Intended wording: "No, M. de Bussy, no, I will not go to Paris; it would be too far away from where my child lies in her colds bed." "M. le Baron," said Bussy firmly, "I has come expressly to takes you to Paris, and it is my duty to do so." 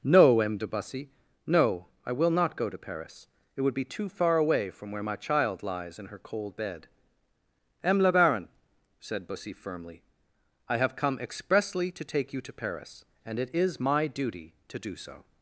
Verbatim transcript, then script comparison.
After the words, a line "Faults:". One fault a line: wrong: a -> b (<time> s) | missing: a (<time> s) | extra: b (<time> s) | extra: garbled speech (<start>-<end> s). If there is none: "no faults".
"No, M. de Bussy, no, I will not go to Paris; it would be too far away from where my child lies in her cold bed." "M. le Baron," said Bussy firmly, "I have come expressly to take you to Paris, and it is my duty to do so."
Faults:
wrong: colds -> cold (6.2 s)
wrong: has -> have (10.8 s)
wrong: takes -> take (12.0 s)